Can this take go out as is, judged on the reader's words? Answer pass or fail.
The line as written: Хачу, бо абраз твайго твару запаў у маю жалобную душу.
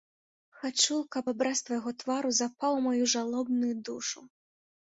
fail